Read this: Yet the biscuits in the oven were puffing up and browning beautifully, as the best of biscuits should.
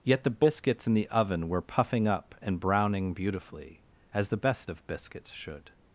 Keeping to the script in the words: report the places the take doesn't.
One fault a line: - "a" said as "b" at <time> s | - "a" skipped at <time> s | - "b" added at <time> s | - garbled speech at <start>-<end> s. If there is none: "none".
none